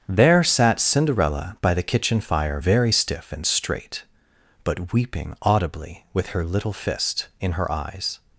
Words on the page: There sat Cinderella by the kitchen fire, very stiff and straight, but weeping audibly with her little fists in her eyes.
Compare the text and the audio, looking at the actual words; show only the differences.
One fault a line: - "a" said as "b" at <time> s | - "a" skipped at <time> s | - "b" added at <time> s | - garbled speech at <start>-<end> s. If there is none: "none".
- "fists" said as "fist" at 6.7 s